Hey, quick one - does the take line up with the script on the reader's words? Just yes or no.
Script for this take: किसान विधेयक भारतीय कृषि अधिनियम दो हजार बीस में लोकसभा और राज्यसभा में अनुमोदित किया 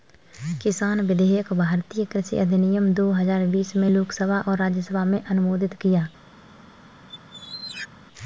yes